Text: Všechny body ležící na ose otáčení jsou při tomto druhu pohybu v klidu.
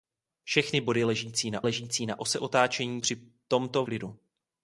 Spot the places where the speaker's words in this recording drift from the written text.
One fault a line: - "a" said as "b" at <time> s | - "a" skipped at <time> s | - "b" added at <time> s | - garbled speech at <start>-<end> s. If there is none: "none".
- "ležící na" added at 1.6 s
- "jsou" skipped at 3.0 s
- "druhu pohybu v" skipped at 3.8 s